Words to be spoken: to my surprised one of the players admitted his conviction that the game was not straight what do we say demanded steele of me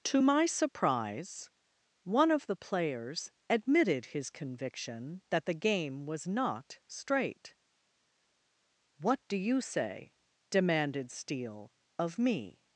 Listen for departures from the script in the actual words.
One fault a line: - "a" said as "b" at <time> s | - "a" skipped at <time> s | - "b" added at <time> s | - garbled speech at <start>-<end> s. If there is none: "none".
- "surprised" said as "surprise" at 0.5 s
- "we" said as "you" at 9.4 s